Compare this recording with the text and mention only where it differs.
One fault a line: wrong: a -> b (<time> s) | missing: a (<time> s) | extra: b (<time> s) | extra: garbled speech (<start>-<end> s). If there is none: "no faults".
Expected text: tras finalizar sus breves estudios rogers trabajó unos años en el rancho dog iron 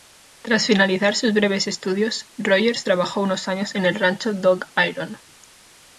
no faults